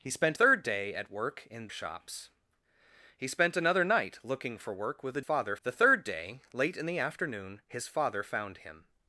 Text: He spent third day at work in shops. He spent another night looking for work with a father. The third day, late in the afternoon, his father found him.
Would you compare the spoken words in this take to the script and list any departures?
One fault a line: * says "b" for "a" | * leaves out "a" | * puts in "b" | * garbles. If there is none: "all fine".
all fine